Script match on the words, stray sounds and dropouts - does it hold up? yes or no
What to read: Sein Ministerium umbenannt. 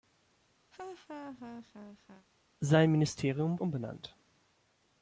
no